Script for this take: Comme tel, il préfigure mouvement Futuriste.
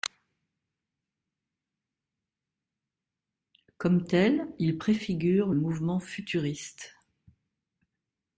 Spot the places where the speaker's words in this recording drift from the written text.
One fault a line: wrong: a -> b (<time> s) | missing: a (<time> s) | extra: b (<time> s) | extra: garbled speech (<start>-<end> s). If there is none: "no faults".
no faults